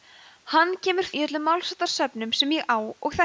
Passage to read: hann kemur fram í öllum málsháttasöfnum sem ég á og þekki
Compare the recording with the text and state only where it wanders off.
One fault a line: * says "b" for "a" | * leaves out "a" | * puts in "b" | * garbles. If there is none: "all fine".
* leaves out "fram"